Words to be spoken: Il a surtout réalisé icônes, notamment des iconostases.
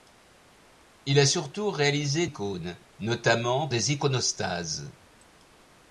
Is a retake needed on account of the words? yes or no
no